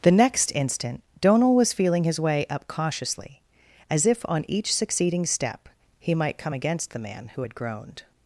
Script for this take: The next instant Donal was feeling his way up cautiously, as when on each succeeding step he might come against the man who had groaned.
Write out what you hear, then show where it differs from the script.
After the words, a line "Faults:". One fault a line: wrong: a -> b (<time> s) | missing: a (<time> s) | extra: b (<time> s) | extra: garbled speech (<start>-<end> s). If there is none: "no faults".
The next instant Donal was feeling his way up cautiously, as if on each succeeding step he might come against the man who had groaned.
Faults:
wrong: when -> if (4.1 s)